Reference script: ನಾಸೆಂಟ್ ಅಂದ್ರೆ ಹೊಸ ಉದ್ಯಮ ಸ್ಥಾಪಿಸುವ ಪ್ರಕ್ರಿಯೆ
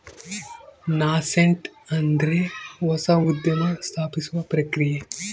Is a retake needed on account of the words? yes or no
no